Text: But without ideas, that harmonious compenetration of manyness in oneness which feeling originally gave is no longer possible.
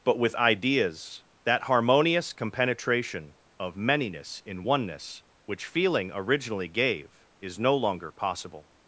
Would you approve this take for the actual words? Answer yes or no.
no